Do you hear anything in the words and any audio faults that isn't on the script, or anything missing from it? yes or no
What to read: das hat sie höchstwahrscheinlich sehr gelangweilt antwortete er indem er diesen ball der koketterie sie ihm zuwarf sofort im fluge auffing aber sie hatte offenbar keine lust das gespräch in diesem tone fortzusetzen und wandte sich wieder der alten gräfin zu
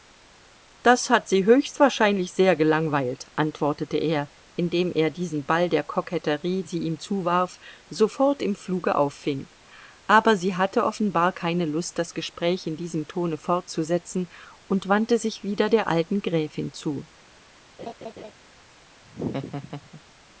yes